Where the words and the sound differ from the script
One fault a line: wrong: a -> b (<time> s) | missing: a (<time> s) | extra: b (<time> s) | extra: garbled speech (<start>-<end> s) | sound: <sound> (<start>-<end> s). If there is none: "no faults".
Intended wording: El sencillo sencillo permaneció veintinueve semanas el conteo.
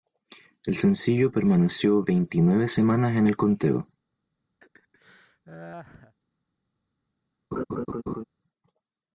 missing: sencillo (1.3 s)
extra: en (3.2 s)
sound: laugh (4.6-6.2 s)
sound: laugh (7.5-8.2 s)